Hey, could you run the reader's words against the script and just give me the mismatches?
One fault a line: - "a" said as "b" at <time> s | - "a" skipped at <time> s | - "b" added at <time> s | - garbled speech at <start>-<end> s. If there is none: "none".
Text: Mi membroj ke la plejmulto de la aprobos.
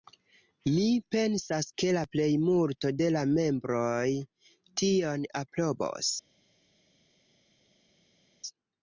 - "membroj" said as "pensas" at 1.1 s
- "membroj tion" added at 3.4 s